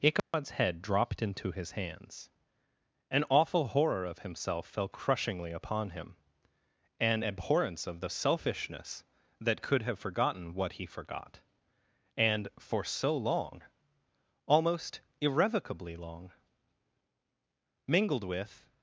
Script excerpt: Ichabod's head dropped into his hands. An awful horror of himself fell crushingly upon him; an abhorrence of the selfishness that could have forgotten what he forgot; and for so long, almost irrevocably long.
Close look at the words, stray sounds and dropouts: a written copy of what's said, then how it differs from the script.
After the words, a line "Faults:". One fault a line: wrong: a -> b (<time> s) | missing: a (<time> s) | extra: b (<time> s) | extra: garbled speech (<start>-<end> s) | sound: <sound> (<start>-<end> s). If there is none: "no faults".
Ichabod's head dropped into his hands. An awful horror of himself fell crushingly upon him; an abhorrence of the selfishness that could have forgotten what he forgot; and for so long, almost irrevocably long. Mingled with
Faults:
sound: dropout (0.2-0.3 s)
extra: Mingled with (17.8 s)